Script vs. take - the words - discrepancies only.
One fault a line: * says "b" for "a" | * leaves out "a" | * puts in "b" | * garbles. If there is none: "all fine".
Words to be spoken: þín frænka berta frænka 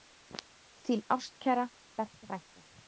* says "ástkæra" for "frænka"